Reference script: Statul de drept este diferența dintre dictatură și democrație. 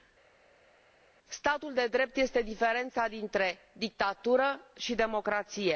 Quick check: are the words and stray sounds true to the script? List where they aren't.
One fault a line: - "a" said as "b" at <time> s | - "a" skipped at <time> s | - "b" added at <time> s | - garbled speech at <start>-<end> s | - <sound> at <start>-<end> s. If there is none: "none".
none